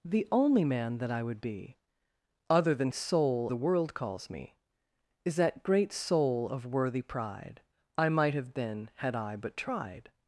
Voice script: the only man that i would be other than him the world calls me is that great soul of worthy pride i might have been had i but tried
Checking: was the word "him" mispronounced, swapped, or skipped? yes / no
yes